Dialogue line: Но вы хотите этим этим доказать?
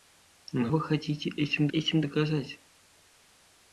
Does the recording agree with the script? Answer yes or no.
yes